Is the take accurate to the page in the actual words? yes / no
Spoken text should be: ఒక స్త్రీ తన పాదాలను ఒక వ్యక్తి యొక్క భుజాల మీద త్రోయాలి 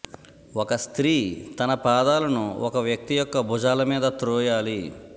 yes